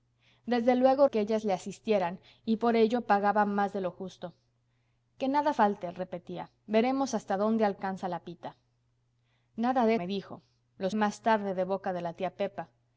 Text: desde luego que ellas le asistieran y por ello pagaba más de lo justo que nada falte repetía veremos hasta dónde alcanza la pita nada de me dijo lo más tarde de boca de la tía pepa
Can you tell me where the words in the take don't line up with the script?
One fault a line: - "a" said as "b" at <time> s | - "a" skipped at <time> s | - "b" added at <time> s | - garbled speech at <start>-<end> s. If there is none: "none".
none